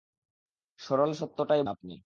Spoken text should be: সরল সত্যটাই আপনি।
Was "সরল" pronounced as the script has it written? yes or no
yes